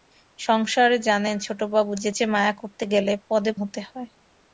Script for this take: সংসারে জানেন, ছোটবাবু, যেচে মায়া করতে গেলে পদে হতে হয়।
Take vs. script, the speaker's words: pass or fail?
pass